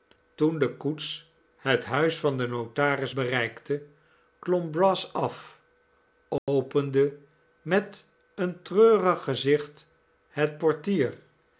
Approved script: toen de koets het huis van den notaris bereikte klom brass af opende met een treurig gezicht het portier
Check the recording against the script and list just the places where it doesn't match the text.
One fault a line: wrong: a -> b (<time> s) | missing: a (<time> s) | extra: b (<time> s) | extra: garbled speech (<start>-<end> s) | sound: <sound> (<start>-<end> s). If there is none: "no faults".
sound: dropout (6.4-6.5 s)